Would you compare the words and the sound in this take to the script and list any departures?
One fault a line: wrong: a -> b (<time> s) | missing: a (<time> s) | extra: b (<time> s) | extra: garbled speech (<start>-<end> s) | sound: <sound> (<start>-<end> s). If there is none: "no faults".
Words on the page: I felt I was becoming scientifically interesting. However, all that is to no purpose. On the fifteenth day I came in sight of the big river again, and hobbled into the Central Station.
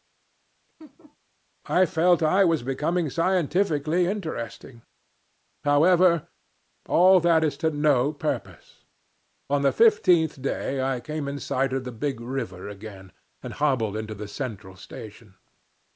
sound: laugh (0.8-1.2 s)